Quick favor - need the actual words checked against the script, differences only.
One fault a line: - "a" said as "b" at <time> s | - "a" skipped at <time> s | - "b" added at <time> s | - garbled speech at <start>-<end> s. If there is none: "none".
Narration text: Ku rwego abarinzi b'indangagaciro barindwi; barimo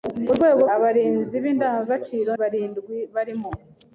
none